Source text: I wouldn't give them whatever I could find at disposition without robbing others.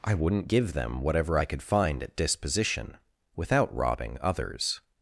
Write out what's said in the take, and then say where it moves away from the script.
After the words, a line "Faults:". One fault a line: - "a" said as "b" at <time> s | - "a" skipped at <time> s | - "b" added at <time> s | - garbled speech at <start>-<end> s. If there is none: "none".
I wouldn't give them whatever I could find at disposition without robbing others.
Faults:
none